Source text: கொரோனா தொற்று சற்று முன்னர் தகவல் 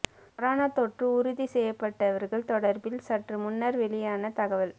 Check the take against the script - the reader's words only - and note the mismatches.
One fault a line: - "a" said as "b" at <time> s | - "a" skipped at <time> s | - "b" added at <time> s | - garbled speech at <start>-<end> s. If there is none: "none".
- "உறுதி செய்யப்பட்டவர்கள் தொடர்பில்" added at 1.2 s
- "வெளியான" added at 3.8 s